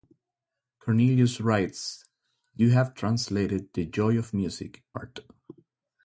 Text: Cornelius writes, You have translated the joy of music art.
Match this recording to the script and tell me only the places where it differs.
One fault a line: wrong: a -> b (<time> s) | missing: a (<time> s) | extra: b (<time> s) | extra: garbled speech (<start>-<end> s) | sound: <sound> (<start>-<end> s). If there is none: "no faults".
no faults